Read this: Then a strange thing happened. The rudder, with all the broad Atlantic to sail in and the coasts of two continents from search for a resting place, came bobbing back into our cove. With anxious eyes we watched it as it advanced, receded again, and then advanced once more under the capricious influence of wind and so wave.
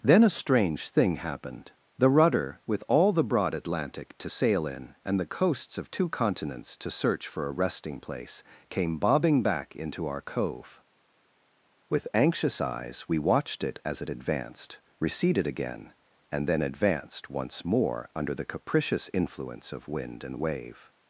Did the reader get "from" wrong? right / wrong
wrong